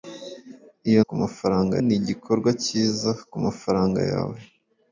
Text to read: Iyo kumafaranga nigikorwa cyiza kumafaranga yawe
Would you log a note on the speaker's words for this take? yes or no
no